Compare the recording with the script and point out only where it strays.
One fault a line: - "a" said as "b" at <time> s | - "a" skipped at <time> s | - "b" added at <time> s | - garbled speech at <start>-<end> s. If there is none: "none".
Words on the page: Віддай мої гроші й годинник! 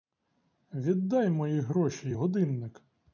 none